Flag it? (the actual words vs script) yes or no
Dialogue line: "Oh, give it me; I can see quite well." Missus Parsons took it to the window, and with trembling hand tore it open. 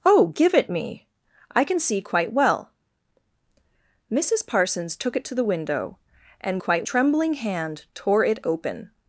yes